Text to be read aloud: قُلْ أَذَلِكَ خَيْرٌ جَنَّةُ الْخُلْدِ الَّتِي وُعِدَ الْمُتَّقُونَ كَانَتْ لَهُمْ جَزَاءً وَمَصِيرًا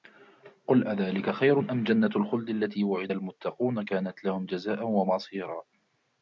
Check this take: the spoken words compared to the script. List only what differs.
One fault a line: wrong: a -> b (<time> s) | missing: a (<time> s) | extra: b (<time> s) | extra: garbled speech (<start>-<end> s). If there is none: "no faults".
extra: أَمْ (1.6 s)